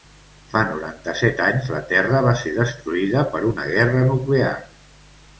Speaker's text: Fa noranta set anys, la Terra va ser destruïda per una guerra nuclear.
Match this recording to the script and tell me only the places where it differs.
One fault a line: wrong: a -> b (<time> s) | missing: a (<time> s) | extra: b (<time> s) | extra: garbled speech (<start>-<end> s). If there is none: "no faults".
no faults